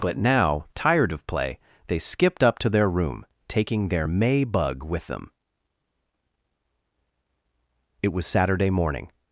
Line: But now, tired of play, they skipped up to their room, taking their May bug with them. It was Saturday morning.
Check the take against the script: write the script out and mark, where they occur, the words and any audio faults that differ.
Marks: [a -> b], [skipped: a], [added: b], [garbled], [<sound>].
But now, tired of play, they skipped up to their room, taking their May bug with them. It was Saturday morning.